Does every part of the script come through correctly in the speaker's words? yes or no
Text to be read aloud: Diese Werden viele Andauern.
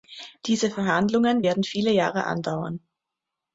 no